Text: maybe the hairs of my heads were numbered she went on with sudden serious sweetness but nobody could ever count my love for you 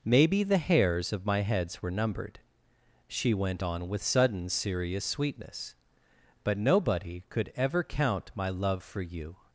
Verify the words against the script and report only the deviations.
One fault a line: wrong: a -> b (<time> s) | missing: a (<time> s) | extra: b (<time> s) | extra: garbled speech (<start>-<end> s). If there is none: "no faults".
no faults